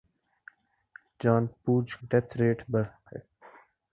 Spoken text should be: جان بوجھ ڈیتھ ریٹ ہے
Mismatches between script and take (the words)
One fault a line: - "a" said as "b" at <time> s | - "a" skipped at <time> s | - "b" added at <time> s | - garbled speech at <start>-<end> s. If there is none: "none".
none